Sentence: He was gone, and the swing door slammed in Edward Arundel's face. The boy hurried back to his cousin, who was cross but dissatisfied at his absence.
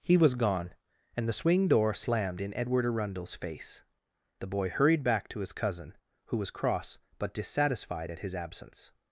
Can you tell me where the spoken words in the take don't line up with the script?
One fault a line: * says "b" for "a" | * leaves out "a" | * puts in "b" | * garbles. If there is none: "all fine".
all fine